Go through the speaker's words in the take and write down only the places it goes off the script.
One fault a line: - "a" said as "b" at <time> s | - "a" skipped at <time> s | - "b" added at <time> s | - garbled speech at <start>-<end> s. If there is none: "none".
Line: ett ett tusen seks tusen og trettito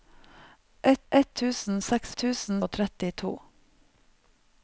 none